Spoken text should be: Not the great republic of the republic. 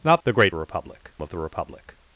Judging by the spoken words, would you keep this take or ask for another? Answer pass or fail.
pass